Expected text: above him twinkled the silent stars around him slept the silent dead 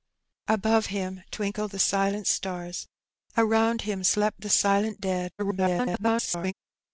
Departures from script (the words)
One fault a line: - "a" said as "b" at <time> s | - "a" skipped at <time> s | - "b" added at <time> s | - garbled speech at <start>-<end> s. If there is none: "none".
- garbled speech at 5.4-6.5 s